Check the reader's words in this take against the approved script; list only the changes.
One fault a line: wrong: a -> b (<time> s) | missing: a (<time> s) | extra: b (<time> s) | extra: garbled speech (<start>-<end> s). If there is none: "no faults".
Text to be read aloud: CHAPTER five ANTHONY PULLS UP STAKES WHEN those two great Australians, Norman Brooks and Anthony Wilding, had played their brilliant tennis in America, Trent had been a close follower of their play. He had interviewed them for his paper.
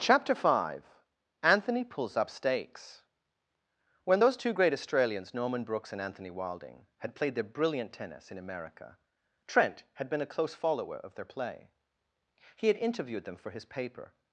no faults